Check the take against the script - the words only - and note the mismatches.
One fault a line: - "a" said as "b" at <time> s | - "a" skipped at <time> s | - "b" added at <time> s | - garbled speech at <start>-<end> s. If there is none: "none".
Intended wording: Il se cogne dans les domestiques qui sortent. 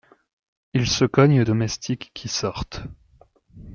- "dans les" skipped at 1.4 s